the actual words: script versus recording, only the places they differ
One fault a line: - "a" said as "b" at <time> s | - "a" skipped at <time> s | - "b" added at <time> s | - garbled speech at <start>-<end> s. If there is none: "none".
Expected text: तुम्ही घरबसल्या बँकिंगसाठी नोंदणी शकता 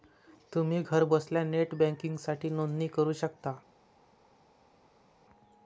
- "नेट" added at 1.4 s
- "करू" added at 2.9 s